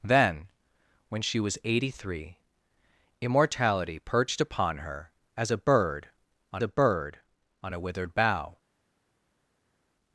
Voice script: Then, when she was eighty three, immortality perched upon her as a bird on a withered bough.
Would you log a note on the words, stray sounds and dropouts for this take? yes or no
yes